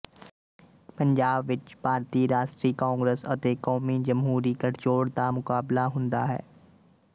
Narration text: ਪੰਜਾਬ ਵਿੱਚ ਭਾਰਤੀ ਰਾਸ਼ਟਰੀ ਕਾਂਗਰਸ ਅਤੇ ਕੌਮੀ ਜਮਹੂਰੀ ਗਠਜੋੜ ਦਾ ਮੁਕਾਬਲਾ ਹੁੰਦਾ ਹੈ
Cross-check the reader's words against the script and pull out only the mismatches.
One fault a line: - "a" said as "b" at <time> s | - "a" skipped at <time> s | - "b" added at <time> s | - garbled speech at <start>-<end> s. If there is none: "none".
none